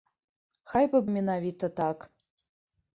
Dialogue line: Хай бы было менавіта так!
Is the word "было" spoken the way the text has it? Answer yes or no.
no